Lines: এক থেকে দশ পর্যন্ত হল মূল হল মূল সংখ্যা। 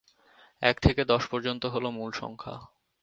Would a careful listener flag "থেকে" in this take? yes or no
no